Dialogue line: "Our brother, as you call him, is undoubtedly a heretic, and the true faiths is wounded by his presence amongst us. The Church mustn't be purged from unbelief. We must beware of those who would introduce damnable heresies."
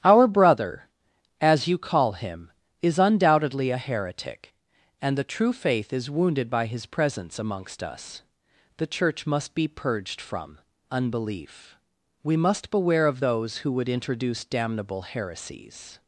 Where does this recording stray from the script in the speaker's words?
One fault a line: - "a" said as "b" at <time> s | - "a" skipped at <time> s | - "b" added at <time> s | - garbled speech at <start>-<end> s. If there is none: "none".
- "faiths" said as "faith" at 5.5 s
- "mustn't" said as "must" at 9.3 s